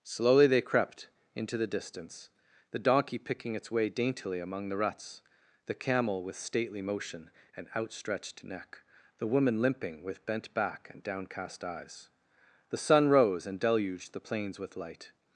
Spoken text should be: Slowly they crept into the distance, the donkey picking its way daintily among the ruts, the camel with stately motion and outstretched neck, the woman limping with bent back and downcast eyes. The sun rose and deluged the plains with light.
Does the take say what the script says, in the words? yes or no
yes